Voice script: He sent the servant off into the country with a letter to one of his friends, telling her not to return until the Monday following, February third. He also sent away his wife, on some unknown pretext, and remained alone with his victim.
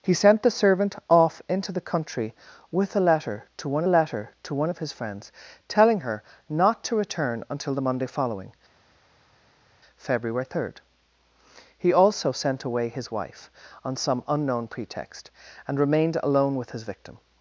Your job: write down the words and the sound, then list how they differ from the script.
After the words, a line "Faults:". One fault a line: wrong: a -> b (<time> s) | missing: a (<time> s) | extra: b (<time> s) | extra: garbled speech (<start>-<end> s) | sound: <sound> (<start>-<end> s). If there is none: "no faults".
He sent the servant off into the country with a letter to one letter to one of his friends, telling her not to return until the Monday following, February third. He also sent away his wife, on some unknown pretext, and remained alone with his victim.
Faults:
extra: letter to one (3.9 s)